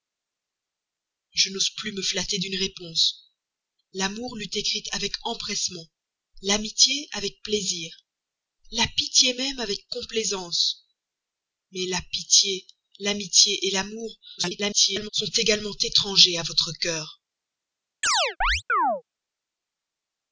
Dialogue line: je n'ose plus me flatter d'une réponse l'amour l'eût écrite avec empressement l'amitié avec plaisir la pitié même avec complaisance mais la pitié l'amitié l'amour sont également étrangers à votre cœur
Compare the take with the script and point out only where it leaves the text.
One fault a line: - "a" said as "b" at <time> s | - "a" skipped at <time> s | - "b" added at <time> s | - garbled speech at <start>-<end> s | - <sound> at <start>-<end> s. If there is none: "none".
- garbled speech at 14.4-15.1 s
- chirp at 18.0-19.0 s